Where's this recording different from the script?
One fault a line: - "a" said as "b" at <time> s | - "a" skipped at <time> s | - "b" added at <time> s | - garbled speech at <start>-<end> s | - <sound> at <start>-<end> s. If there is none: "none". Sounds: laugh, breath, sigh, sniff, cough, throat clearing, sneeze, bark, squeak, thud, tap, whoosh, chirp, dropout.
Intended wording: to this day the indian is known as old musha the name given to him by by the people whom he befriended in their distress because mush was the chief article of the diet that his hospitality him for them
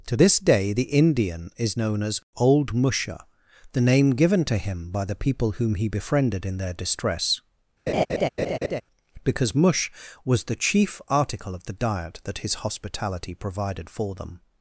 - "by" skipped at 5.0 s
- laugh at 7.9-8.8 s
- "him" said as "provided" at 13.3 s